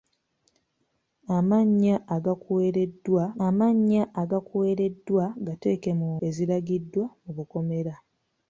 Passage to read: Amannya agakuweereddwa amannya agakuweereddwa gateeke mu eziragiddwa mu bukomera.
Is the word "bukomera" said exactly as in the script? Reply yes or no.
yes